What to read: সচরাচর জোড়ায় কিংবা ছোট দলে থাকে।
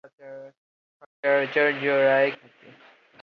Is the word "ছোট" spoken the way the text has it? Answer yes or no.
no